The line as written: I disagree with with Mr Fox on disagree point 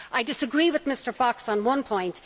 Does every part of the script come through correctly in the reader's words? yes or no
no